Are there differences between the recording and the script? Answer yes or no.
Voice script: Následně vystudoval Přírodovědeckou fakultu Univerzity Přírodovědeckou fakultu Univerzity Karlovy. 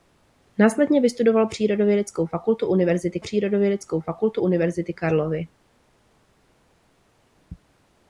no